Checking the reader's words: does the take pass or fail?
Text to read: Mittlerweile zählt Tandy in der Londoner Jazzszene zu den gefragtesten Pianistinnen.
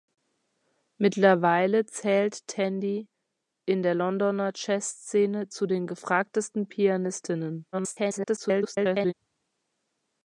fail